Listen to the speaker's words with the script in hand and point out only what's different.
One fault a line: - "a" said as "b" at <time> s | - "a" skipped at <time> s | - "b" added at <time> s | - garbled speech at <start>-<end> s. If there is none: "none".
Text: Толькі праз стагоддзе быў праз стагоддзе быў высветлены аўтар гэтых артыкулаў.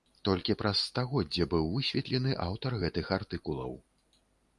- "праз стагоддзе быў" skipped at 1.7 s